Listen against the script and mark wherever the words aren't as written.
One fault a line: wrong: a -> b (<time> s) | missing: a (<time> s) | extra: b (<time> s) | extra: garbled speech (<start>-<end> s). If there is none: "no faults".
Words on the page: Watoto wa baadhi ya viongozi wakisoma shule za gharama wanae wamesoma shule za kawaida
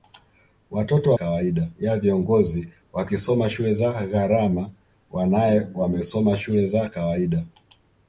wrong: baadhi -> kawaida (1.1 s)